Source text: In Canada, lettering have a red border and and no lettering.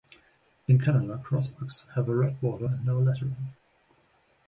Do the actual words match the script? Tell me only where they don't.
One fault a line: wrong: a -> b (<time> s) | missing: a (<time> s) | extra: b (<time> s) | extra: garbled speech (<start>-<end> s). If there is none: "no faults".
wrong: lettering -> crossbucks (1.2 s)
missing: and (2.8 s)